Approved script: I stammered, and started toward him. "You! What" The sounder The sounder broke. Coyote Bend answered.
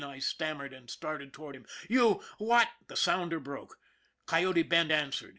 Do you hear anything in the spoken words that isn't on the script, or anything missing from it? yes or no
yes